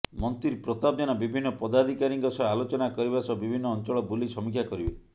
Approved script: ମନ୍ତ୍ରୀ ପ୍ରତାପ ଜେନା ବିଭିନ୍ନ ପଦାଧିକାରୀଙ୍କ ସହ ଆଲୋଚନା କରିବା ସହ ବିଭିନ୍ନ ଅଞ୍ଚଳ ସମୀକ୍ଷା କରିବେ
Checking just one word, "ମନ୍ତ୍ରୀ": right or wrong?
right